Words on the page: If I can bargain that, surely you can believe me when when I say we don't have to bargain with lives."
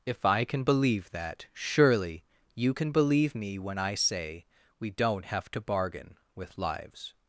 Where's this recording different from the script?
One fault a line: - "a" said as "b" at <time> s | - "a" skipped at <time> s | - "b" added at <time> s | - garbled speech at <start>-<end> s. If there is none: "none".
- "bargain" said as "believe" at 0.6 s
- "when" skipped at 3.8 s